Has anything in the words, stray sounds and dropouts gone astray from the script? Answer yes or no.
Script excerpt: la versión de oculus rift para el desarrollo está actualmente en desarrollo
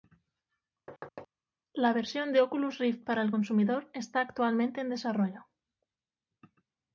yes